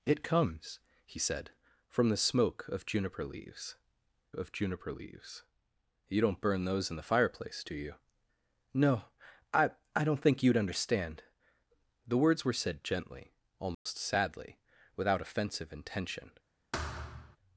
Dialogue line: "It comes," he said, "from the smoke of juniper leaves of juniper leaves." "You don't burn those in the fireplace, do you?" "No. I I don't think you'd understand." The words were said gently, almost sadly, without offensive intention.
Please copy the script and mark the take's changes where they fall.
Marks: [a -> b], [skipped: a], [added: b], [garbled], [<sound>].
"It comes," he said, "from the smoke of juniper leaves of juniper leaves." "You don't burn those in the fireplace, do you?" "No. I I don't think you'd understand." The words were said gently, almost [dropout] sadly, without offensive intention. [thud]